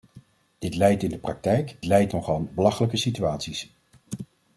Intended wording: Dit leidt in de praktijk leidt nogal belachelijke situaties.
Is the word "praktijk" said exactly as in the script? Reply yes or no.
yes